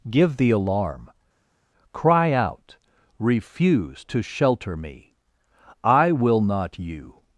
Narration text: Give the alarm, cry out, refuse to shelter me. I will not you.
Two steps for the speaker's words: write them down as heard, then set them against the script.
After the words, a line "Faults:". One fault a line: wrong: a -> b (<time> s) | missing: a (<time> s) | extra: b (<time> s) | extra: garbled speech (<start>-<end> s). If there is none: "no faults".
Give the alarm, cry out, refuse to shelter me. I will not you.
Faults:
no faults